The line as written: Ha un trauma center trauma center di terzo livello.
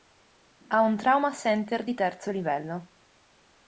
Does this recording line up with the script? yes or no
no